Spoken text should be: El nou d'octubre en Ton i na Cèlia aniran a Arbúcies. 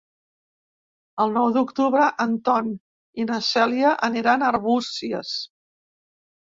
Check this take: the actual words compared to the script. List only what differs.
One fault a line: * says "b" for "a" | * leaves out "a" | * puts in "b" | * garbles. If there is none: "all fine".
all fine